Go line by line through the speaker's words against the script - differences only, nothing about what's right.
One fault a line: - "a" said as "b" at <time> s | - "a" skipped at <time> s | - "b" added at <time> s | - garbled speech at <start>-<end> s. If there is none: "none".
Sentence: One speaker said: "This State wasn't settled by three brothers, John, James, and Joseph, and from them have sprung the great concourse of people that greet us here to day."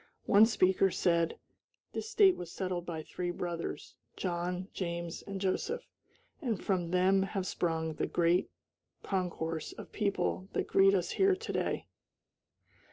- "wasn't" said as "was" at 2.4 s